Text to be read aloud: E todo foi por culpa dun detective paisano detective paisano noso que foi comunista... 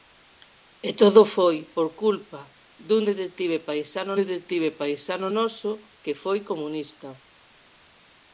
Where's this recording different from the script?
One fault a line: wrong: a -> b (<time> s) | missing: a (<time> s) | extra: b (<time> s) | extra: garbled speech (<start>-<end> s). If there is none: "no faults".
no faults